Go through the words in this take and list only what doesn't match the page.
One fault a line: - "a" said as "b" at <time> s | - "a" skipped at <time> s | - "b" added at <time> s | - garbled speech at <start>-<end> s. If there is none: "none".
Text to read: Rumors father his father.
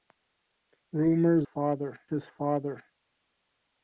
none